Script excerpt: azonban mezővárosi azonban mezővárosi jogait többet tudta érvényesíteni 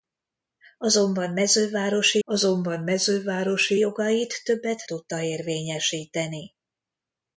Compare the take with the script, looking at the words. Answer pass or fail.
pass